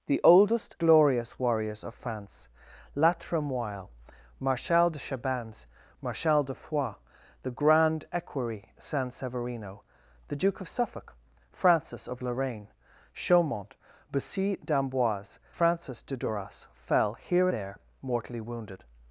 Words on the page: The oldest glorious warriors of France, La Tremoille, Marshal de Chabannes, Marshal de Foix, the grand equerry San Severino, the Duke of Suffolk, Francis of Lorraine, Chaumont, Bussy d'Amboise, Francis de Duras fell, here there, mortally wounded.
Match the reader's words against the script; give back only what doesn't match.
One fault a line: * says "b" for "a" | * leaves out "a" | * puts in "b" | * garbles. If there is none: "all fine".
all fine